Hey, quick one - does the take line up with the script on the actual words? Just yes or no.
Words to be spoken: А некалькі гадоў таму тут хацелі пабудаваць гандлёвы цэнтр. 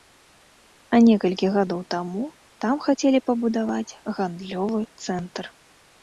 no